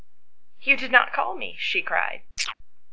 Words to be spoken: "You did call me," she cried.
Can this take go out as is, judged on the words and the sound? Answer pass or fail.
fail